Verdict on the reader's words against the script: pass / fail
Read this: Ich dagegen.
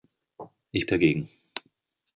pass